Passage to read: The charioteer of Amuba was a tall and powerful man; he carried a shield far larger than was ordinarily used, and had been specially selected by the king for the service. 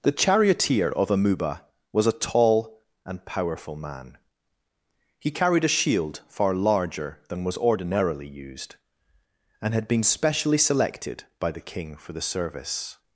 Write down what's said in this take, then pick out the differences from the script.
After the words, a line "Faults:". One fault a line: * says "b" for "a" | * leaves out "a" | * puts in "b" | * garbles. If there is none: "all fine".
The charioteer of Amuba was a tall and powerful man; he carried a shield far larger than was ordinarily used, and had been specially selected by the king for the service.
Faults:
all fine